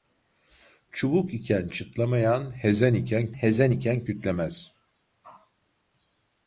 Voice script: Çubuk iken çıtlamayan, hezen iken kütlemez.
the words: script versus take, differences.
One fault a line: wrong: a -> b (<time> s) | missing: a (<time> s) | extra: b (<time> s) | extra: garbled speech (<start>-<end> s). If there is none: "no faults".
extra: hezen iken (3.3 s)